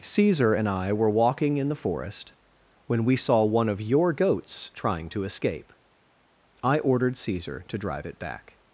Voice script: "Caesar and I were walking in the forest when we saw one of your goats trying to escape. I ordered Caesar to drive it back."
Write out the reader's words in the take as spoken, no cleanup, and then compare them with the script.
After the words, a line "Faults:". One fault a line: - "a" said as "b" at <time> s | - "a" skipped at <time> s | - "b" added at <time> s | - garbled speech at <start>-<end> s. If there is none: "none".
"Caesar and I were walking in the forest when we saw one of your goats trying to escape. I ordered Caesar to drive it back."
Faults:
none